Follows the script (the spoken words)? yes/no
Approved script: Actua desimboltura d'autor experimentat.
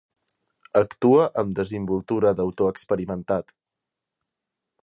no